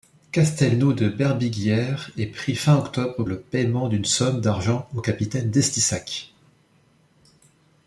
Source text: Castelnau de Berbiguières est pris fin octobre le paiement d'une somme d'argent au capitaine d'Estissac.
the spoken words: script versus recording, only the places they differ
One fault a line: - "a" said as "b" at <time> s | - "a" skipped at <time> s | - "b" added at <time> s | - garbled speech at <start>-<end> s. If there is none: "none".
none